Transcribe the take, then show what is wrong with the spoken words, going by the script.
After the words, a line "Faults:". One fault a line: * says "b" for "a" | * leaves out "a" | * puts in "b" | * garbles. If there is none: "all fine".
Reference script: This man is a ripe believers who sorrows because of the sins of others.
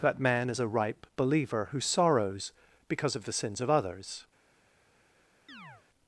That man is a ripe believer who sorrows because of the sins of others.
Faults:
* says "That" for "This"
* says "believer" for "believers"